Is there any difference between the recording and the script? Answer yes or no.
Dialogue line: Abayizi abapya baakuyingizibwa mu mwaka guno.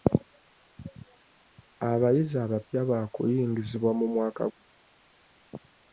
no